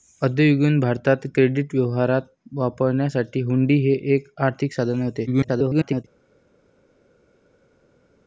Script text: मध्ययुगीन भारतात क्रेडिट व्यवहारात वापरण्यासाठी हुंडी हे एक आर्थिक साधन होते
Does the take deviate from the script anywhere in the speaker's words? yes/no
yes